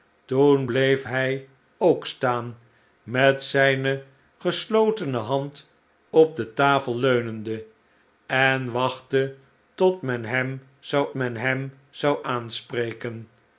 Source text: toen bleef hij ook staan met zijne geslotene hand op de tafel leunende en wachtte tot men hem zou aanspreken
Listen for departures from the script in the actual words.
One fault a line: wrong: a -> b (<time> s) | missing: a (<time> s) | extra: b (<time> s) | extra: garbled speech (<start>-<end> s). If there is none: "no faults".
extra: men hem zou (11.1 s)